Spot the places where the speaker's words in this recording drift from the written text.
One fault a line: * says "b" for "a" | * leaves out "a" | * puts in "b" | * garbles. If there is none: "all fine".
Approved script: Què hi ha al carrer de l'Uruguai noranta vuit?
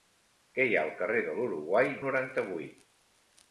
all fine